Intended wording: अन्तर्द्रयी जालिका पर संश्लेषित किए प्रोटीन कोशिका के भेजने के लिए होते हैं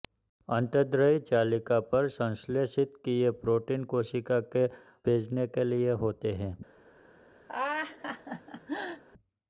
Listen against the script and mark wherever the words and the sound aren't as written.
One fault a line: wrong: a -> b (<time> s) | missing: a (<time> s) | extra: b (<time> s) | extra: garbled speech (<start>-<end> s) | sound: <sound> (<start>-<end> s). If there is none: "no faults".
sound: laugh (7.5-9.0 s)